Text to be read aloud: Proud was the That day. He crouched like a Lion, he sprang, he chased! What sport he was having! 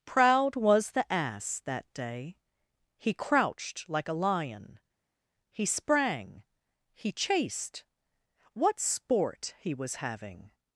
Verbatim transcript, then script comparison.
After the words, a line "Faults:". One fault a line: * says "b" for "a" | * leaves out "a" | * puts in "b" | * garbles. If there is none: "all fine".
Proud was the Ass that day. He crouched like a Lion, he sprang, he chased! What sport he was having!
Faults:
* puts in "Ass"